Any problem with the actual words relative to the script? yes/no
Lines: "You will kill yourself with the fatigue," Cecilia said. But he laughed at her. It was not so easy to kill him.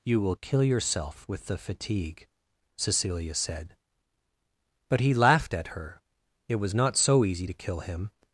no